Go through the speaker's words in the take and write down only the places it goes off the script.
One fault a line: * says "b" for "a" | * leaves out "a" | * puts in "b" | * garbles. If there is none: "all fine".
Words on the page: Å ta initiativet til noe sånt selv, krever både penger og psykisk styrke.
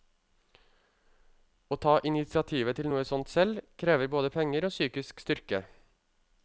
all fine